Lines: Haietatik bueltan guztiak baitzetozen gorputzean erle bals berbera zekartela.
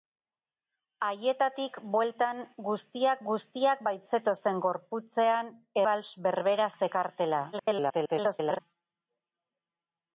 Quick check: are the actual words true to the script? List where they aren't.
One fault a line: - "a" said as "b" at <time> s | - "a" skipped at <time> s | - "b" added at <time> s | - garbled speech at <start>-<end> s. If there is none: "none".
- "guztiak" added at 3.3 s
- "erle" skipped at 5.5 s
- garbled speech at 7.5-8.6 s